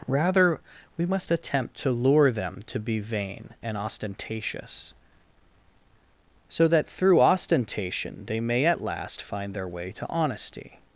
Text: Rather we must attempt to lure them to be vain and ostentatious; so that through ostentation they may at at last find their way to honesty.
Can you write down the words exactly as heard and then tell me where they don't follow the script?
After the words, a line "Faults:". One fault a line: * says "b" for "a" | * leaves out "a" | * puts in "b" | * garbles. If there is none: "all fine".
Rather we must attempt to lure them to be vain and ostentatious; so that through ostentation they may at last find their way to honesty.
Faults:
* leaves out "at"